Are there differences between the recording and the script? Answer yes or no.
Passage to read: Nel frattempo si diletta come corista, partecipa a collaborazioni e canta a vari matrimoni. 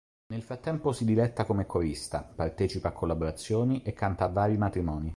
no